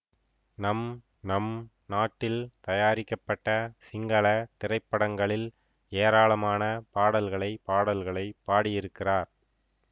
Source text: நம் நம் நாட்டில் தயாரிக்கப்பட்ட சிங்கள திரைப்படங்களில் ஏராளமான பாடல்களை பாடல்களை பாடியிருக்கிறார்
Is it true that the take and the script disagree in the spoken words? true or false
false